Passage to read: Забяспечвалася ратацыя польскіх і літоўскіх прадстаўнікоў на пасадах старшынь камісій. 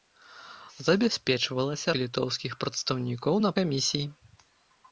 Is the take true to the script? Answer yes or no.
no